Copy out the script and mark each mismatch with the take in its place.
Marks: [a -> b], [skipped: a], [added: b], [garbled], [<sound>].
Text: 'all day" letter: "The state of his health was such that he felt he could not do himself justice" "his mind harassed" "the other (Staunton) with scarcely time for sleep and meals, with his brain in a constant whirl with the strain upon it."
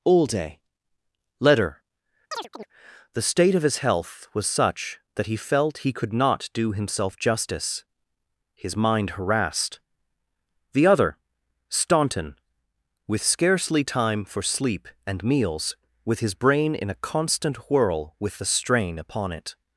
'all day" letter: [chirp] "The state of his health was such that he felt he could not do himself justice" "his mind harassed" "the other (Staunton) with scarcely time for sleep and meals, with his brain in a constant whirl with the strain upon it."